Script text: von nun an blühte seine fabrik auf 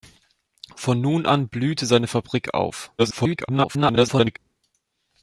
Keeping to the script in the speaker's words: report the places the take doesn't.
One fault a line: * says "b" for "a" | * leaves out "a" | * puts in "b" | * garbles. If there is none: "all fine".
* garbles